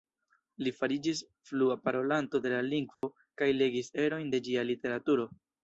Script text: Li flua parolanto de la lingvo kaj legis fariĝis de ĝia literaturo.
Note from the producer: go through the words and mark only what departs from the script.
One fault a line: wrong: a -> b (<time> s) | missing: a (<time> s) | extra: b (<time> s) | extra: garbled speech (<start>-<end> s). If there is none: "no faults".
extra: fariĝis (0.8 s)
wrong: fariĝis -> erojn (4.1 s)